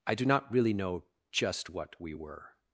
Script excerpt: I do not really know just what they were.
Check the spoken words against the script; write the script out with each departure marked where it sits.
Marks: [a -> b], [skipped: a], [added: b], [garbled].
I do not really know just what [they -> we] were.